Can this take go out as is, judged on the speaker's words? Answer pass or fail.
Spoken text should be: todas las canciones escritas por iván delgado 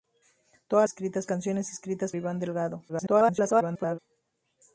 fail